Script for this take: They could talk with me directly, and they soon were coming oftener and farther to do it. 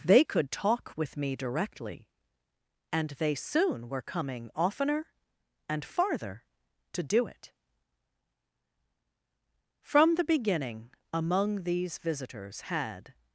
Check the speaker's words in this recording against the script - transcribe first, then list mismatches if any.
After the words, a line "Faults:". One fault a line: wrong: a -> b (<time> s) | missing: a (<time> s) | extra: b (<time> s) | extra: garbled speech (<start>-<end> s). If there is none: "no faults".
They could talk with me directly, and they soon were coming oftener and farther to do it. From the beginning, among these visitors had
Faults:
extra: From the beginning among these visitors had (9.8 s)